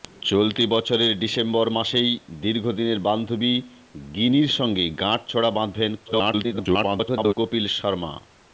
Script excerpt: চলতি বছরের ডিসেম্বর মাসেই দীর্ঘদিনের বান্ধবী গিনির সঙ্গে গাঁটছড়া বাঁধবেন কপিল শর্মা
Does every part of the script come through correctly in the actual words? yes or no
no